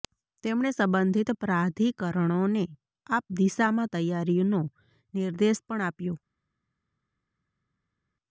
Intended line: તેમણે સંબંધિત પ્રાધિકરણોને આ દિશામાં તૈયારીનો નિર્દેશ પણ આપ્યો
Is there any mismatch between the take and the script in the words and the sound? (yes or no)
no